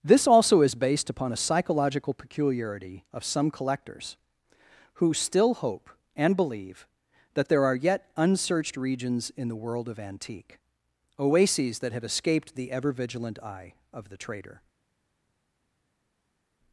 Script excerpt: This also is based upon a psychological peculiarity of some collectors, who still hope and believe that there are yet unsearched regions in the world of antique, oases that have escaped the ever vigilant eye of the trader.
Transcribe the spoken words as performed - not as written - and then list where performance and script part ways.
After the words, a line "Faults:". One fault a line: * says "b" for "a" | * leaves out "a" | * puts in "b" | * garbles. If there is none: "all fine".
This also is based upon a psychological peculiarity of some collectors, who still hope and believe that there are yet unsearched regions in the world of antique, oases that have escaped the ever vigilant eye of the trader.
Faults:
all fine